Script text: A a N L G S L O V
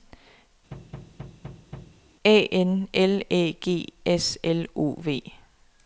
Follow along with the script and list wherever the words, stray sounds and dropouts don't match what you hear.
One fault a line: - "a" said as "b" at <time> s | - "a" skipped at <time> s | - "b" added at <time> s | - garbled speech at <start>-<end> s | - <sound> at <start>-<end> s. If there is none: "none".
- thud at 0.7-2.0 s
- "a" skipped at 2.5 s
- "Æ" added at 3.3 s